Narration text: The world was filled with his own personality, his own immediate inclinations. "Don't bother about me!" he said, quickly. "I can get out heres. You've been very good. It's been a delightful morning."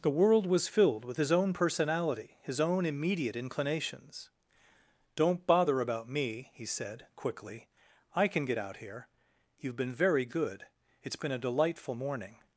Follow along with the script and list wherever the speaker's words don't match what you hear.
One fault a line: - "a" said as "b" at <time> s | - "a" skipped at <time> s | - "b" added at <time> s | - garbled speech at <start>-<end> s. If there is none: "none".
- "heres" said as "here" at 8.8 s